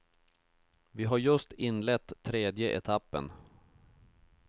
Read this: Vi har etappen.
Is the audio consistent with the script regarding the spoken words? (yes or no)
no